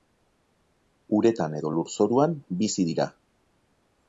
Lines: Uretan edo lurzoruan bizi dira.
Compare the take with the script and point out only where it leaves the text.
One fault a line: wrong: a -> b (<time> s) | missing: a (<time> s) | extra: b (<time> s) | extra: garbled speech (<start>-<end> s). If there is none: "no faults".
no faults